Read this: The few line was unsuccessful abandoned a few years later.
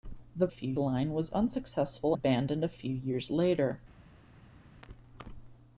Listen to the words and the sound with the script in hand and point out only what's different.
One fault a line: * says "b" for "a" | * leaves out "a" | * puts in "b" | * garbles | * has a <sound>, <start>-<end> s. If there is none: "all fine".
all fine